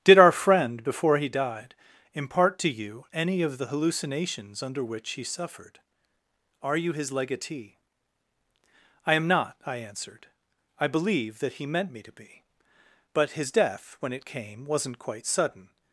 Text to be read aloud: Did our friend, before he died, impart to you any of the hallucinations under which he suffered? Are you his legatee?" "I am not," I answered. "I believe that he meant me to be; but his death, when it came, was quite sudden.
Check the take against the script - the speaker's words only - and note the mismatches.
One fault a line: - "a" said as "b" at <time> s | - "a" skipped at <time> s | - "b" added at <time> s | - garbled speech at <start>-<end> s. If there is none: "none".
- "was" said as "wasn't" at 14.6 s